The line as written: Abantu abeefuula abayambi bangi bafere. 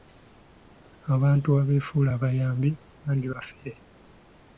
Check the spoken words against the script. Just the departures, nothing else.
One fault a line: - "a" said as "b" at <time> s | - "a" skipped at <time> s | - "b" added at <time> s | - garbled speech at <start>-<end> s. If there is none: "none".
none